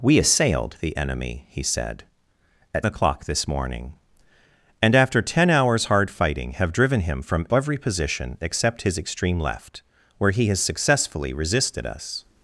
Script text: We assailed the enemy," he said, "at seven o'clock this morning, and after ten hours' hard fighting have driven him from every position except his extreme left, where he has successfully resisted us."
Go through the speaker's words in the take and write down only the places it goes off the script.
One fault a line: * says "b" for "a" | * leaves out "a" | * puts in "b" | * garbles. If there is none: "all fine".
* leaves out "seven"